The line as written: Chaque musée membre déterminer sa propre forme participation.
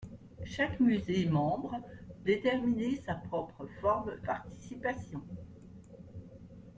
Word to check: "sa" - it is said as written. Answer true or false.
true